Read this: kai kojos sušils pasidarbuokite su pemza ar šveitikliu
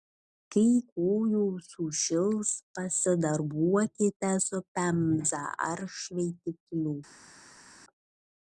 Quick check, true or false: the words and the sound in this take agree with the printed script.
true